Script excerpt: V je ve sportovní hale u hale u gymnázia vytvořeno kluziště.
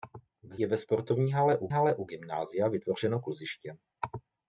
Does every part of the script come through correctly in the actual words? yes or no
yes